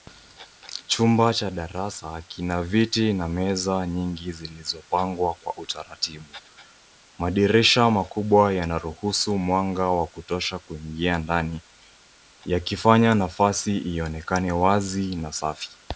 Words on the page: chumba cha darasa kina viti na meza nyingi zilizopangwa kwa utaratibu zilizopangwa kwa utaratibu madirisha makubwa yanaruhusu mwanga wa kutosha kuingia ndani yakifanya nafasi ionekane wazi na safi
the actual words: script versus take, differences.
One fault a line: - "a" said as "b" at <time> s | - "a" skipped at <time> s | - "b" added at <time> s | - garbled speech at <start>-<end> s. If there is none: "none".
- "zilizopangwa kwa utaratibu" skipped at 6.2 s